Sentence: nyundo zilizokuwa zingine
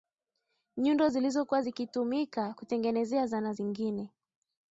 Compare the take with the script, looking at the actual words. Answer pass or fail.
fail